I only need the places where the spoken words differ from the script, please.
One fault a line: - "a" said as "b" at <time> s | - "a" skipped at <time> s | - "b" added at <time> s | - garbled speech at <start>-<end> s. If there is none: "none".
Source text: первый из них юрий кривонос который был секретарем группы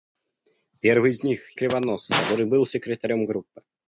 - "юрий" skipped at 1.4 s